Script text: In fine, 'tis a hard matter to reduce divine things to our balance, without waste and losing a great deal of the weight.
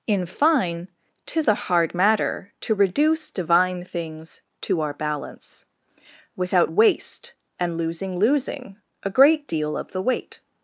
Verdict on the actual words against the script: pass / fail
fail